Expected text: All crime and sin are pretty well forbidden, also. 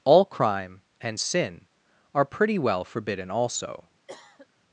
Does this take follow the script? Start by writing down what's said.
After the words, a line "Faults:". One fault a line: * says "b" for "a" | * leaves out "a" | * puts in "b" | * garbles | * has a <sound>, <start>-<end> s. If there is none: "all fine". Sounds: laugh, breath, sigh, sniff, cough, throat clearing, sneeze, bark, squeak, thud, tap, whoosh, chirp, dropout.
All crime and sin are pretty well forbidden, also.
Faults:
* has a cough, 4.1-4.5 s